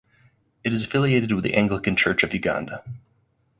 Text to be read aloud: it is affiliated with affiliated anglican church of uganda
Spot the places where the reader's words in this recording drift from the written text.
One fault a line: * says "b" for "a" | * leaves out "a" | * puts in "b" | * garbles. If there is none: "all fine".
* says "the" for "affiliated"